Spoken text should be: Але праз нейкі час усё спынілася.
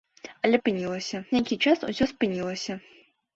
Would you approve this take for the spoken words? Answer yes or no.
no